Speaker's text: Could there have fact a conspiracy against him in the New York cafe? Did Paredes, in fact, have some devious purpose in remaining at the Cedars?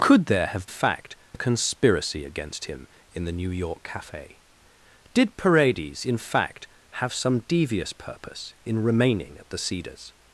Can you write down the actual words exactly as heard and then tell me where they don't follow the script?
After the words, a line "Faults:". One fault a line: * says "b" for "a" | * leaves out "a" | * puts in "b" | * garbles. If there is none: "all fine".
Could there have fact a conspiracy against him in the New York cafe? Did Paredes, in fact, have some devious purpose in remaining at the Cedars?
Faults:
all fine